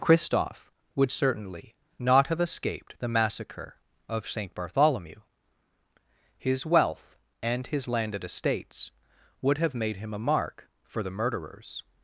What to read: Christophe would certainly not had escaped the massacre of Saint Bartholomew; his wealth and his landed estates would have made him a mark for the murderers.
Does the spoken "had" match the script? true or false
false